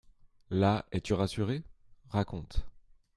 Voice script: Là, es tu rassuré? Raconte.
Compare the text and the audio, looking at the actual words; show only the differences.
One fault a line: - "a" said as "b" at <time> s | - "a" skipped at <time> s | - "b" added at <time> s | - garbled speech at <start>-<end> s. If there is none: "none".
none